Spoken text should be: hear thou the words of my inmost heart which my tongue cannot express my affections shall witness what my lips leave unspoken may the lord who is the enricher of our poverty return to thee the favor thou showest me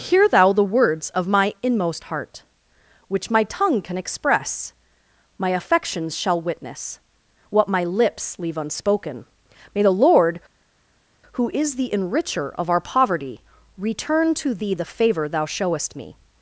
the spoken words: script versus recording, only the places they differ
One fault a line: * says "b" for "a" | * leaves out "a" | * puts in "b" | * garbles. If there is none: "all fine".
* says "can" for "cannot"